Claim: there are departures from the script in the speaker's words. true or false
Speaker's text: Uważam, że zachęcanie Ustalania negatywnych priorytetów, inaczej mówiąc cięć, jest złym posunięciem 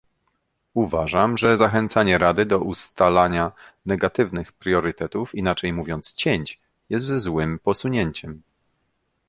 true